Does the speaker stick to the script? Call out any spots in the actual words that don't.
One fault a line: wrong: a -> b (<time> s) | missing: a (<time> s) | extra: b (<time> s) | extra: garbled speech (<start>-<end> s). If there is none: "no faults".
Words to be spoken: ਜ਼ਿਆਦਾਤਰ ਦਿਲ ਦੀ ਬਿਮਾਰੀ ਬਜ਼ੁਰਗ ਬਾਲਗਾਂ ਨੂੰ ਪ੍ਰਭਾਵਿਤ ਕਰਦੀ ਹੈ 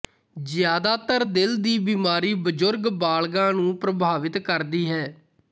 no faults